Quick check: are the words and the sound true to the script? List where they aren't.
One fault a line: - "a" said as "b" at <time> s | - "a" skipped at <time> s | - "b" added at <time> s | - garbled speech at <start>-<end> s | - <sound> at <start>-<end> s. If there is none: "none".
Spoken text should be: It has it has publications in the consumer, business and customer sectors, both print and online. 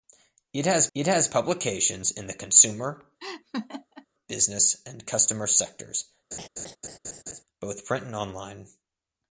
- laugh at 3.2-4.1 s
- laugh at 6.3-7.4 s